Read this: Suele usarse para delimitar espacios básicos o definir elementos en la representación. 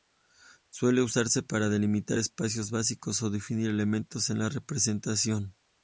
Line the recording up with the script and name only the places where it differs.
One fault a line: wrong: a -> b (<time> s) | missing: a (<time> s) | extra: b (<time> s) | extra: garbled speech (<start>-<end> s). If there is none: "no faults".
no faults